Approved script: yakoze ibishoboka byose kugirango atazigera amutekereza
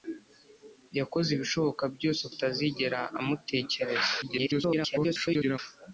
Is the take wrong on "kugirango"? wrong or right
wrong